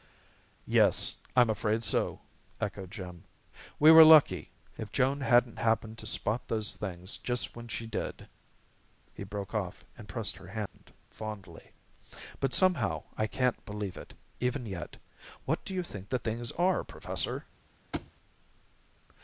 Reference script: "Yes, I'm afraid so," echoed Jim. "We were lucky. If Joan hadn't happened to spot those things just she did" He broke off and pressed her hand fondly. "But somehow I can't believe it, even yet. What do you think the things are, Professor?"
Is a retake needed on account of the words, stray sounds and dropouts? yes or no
yes